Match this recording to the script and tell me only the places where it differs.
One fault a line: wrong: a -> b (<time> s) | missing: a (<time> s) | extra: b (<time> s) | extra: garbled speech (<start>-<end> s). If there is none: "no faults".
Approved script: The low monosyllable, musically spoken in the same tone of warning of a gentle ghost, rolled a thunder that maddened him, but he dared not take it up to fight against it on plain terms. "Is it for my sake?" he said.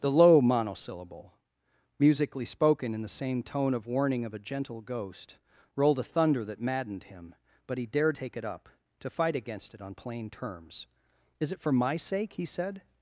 missing: not (8.2 s)